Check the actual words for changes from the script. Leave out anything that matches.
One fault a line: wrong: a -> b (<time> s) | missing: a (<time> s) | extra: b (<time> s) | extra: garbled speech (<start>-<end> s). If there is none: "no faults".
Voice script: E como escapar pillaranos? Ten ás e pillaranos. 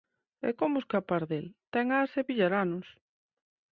wrong: pillaranos -> del (1.3 s)